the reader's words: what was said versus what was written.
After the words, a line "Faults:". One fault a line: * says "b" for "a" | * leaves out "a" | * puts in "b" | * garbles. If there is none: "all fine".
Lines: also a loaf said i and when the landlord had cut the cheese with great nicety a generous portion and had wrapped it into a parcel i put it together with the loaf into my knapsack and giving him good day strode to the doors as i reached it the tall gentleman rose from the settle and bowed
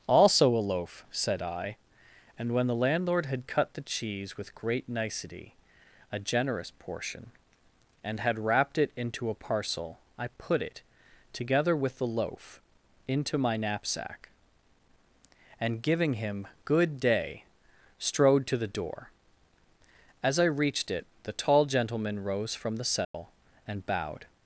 also a loaf said i and when the landlord had cut the cheese with great nicety a generous portion and had wrapped it into a parcel i put it together with the loaf into my knapsack and giving him good day strode to the door as i reached it the tall gentleman rose from the settle and bowed
Faults:
* says "door" for "doors"